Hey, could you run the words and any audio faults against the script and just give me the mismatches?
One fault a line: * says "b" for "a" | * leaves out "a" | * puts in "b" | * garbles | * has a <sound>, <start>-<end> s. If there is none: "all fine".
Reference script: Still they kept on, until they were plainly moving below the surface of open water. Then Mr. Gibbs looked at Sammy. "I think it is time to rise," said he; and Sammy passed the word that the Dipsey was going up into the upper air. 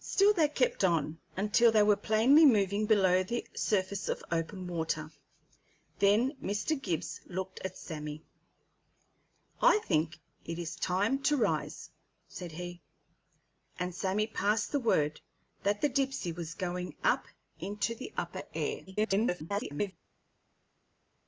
* garbles